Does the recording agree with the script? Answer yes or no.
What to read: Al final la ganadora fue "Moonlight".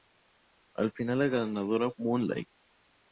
no